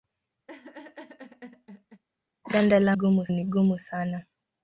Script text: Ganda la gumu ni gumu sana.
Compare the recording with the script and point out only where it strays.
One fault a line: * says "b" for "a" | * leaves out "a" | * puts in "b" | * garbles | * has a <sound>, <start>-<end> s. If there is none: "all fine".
* has a laugh, 0.5-2.0 s